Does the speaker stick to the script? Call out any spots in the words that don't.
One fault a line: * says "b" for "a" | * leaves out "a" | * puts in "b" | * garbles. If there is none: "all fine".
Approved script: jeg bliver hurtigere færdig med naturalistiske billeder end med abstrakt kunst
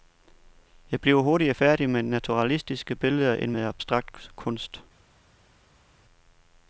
all fine